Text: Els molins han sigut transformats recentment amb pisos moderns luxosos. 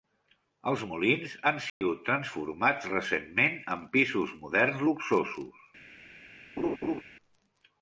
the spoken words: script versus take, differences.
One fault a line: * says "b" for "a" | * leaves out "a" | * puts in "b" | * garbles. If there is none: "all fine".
* says "en" for "amb"